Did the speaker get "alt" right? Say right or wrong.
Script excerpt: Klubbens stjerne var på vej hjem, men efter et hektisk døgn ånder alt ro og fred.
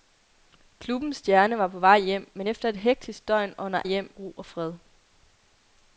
wrong